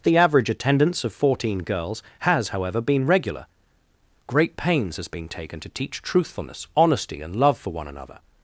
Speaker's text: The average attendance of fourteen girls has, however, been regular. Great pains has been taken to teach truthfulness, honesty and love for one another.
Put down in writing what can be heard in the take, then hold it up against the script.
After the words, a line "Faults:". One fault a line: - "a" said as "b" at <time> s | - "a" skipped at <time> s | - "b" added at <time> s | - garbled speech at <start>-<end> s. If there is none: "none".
The average attendance of fourteen girls has, however, been regular. Great pains has been taken to teach truthfulness, honesty and love for one another.
Faults:
none